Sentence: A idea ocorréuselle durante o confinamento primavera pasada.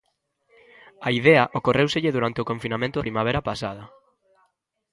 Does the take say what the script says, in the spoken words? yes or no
yes